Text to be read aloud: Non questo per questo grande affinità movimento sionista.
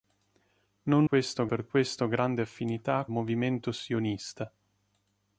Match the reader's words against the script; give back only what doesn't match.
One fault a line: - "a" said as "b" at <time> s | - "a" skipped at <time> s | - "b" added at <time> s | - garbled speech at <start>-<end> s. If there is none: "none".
none